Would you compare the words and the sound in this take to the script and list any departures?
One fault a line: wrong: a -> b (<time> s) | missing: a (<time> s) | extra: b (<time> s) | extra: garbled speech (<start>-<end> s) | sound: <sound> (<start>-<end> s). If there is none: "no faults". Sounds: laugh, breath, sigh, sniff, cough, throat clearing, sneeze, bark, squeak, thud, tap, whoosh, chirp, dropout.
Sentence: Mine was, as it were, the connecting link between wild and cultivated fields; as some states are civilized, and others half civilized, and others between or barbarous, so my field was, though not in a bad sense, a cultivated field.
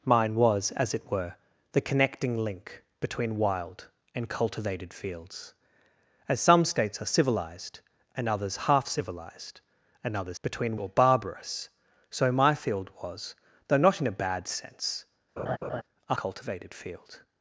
sound: laugh (15.4-15.8 s)